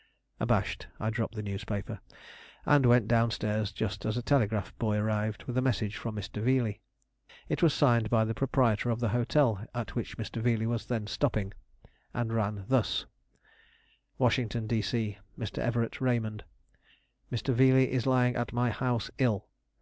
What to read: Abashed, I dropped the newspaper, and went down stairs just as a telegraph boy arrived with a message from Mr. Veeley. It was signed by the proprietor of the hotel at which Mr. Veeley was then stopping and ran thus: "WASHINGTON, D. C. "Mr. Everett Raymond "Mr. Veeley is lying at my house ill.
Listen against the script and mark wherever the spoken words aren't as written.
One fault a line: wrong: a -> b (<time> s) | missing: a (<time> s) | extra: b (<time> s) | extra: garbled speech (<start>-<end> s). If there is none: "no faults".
no faults